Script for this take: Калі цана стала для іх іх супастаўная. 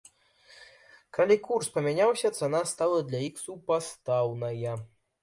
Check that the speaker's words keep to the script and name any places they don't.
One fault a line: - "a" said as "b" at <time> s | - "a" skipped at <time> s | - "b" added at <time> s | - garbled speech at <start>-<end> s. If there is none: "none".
- "курс памяняўся" added at 1.5 s
- "іх" skipped at 3.4 s